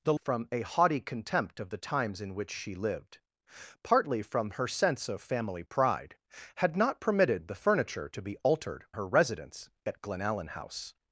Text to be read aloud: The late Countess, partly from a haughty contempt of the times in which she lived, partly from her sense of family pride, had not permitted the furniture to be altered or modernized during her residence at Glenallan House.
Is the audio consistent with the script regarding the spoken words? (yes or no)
no